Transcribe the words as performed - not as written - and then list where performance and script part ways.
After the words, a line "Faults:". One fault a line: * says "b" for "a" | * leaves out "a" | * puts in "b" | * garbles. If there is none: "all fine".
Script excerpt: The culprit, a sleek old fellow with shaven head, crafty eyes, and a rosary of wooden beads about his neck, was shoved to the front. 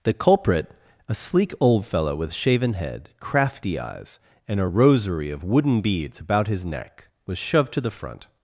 The culprit, a sleek old fellow with shaven head, crafty eyes, and a rosary of wooden beads about his neck, was shoved to the front.
Faults:
all fine